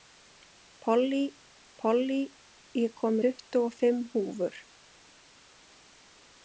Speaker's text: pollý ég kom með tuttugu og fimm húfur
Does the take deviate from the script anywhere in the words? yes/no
yes